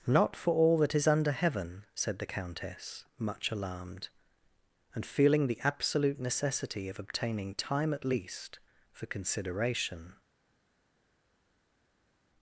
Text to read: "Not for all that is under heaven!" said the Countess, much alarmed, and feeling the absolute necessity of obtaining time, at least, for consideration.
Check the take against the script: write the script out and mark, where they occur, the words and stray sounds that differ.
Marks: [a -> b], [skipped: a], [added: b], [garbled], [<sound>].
"Not for all that is under heaven!" said the Countess, much alarmed, and feeling the absolute necessity of obtaining time, at least, for consideration.